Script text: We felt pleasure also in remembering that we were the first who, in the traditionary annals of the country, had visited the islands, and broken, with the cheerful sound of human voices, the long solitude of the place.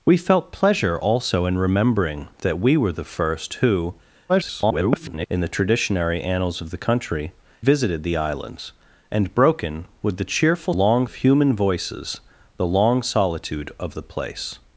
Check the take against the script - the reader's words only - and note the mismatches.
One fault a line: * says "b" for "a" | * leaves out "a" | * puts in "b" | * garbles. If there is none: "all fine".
* garbles
* leaves out "had"
* says "long" for "sound"